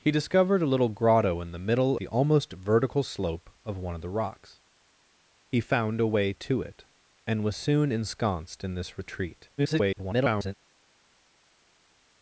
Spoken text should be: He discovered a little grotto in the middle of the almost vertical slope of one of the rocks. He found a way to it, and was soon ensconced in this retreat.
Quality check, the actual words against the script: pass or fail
fail